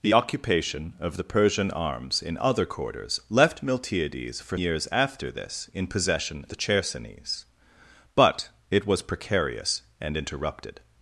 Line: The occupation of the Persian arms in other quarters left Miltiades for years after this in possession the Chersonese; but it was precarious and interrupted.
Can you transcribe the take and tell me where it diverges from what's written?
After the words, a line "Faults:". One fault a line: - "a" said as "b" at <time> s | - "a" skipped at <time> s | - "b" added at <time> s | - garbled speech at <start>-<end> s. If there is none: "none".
The occupation of the Persian arms in other quarters left Miltiades for years after this in possession the Chersonese; but it was precarious and interrupted.
Faults:
none